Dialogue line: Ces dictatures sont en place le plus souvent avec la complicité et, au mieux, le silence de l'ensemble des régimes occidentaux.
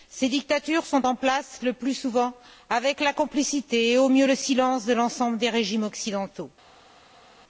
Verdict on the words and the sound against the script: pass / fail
pass